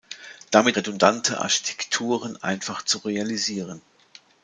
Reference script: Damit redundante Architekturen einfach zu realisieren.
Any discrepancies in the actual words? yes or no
no